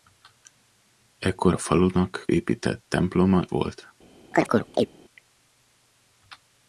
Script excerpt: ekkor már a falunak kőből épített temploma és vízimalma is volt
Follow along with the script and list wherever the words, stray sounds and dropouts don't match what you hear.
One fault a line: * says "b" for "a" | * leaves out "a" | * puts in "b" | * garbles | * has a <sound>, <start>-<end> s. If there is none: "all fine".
* leaves out "már"
* leaves out "kőből"
* leaves out "és vízimalma is"
* has a chirp, 4.3-4.9 s